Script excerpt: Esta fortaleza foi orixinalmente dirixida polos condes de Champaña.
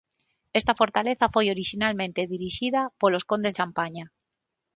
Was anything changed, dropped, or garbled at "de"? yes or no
yes